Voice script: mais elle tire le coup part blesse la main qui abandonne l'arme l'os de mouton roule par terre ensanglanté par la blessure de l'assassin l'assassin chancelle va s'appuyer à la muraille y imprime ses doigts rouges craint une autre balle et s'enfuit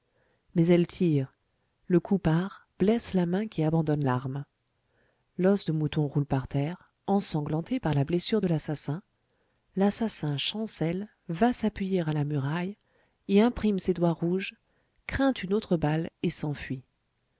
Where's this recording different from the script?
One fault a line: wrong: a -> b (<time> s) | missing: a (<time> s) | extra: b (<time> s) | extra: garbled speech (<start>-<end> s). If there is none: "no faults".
no faults